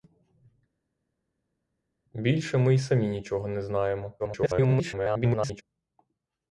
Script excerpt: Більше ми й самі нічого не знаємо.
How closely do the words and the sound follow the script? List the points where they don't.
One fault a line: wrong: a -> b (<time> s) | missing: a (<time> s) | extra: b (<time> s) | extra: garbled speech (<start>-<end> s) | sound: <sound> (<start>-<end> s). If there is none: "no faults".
extra: garbled speech (4.2-5.6 s)